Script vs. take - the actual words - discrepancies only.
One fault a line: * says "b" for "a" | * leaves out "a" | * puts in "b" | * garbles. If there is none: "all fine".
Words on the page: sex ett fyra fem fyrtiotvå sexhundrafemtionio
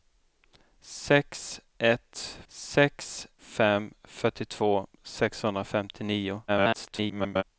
* says "sex" for "fyra"
* garbles